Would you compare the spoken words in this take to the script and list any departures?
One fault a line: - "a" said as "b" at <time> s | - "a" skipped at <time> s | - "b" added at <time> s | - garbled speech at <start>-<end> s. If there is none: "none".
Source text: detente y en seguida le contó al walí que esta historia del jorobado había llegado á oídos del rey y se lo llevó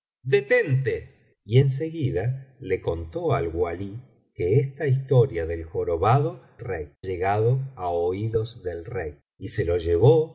- "había" said as "rey" at 6.6 s